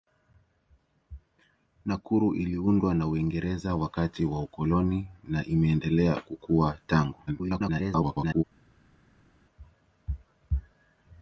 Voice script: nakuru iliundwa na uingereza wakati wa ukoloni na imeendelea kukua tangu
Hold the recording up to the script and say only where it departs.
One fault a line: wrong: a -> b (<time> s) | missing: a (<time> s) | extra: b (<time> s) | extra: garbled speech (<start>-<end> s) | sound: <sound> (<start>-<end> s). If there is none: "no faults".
extra: garbled speech (7.3-8.4 s)